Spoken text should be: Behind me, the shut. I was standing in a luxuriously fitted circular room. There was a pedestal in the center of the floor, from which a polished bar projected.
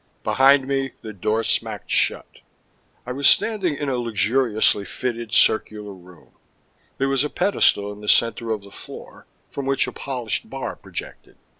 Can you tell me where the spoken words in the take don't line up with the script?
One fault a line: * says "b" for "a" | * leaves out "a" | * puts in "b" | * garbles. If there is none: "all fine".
* puts in "door smacked"